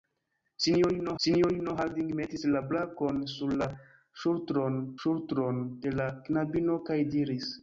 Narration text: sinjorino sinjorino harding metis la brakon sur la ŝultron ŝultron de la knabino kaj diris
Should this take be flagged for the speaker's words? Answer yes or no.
no